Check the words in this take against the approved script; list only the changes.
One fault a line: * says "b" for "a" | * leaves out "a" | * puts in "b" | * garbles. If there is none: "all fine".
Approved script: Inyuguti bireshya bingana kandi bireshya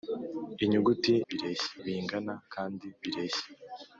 all fine